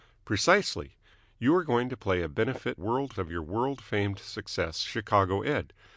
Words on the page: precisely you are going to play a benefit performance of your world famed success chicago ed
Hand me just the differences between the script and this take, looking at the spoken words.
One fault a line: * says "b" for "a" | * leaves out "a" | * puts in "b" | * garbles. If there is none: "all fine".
* says "world" for "performance"